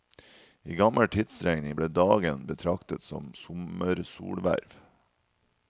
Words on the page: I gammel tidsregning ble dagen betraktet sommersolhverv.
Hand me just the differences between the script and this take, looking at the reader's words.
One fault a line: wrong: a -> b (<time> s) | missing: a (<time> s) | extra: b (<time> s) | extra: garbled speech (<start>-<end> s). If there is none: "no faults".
extra: som (3.0 s)